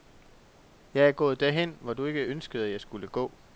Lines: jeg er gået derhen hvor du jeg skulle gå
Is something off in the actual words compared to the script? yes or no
yes